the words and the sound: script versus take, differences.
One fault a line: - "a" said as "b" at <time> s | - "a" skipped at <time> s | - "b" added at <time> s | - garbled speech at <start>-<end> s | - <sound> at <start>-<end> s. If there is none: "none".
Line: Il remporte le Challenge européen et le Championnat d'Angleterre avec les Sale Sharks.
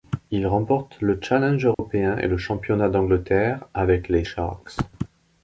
- dropout at 1.7-1.8 s
- "Sale" skipped at 4.2 s